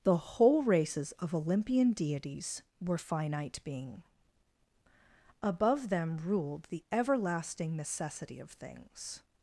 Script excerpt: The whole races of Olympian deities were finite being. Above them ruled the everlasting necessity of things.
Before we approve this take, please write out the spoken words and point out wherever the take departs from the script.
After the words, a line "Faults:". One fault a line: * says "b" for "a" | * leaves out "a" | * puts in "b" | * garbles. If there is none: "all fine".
The whole races of Olympian deities were finite being. Above them ruled the everlasting necessity of things.
Faults:
all fine